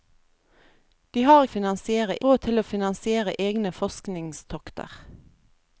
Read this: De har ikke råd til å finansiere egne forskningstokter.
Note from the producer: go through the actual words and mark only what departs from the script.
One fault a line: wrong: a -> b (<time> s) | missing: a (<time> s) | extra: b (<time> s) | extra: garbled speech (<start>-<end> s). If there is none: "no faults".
wrong: ikke -> finansiere (1.5 s)